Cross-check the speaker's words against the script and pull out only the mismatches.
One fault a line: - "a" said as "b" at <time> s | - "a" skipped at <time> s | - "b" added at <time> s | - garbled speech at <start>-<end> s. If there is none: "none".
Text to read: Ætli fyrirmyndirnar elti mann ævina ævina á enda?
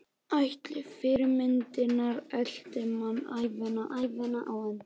none